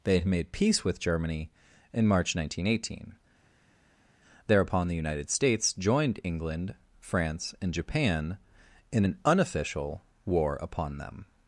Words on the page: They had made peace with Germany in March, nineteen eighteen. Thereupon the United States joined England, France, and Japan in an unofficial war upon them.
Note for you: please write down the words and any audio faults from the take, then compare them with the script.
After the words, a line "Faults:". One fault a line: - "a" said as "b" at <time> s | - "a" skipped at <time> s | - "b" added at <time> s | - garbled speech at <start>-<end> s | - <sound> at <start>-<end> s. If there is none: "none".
They had made peace with Germany in March, nineteen eighteen. Thereupon the United States joined England, France, and Japan in an unofficial war upon them.
Faults:
none